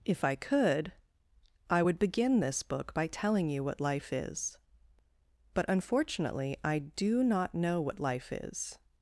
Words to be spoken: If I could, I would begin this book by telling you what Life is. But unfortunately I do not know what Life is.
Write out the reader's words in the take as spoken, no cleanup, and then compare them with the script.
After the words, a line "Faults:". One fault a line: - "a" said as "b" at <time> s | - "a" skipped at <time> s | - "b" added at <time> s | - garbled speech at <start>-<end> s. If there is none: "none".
If I could, I would begin this book by telling you what Life is. But unfortunately I do not know what Life is.
Faults:
none